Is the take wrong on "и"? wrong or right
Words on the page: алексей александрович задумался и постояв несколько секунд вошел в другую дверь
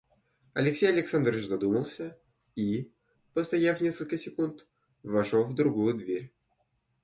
right